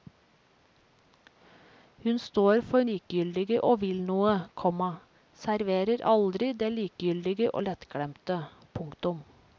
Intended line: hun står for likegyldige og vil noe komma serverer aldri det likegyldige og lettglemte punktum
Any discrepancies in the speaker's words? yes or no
no